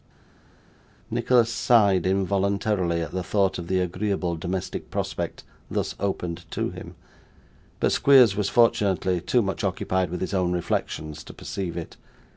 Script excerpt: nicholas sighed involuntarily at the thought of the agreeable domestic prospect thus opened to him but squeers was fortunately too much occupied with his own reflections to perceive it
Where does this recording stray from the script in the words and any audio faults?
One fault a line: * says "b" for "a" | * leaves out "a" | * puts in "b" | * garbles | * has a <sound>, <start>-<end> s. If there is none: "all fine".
all fine